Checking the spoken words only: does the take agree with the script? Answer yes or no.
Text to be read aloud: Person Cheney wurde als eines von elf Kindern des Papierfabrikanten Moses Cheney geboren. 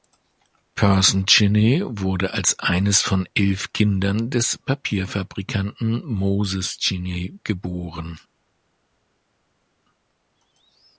yes